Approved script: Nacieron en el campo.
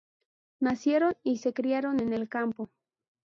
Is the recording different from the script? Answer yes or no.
yes